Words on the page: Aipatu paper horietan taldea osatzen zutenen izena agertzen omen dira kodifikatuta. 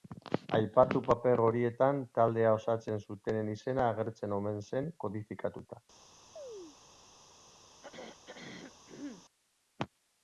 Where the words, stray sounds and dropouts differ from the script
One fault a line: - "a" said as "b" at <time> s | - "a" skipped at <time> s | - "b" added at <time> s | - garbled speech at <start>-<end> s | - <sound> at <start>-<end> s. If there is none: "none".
- "dira" said as "zen" at 4.7 s
- chirp at 6.4-6.8 s
- throat clearing at 7.8-9.3 s